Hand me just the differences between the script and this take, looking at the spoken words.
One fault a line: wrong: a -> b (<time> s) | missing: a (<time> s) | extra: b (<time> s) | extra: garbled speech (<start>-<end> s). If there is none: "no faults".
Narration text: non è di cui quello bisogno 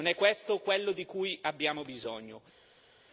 extra: questo quello (0.1 s)
wrong: quello -> abbiamo (1.4 s)